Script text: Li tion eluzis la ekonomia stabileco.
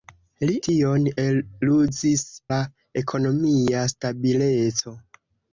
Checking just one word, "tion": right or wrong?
right